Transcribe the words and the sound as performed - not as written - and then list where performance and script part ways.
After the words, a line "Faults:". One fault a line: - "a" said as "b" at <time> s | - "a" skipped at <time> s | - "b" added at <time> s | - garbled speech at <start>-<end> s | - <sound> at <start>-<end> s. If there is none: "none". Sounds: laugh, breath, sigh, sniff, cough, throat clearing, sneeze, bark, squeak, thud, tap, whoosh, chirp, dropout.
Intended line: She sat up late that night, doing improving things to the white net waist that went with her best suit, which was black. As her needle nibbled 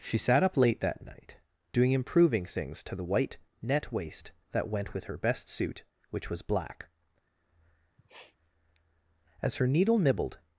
She sat up late that night, doing improving things to the white net waist that went with her best suit, which was black. As her needle nibbled
Faults:
- sniff at 8.0-8.4 s